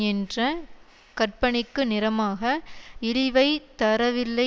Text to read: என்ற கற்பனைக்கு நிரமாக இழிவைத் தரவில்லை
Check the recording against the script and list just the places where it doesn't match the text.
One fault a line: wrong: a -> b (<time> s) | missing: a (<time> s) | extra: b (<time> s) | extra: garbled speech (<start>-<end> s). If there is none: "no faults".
no faults